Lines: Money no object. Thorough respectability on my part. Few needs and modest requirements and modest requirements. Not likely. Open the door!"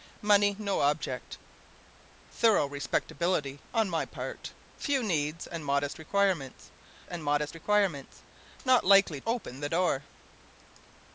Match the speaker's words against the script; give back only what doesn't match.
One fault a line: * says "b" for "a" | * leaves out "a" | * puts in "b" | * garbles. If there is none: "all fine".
all fine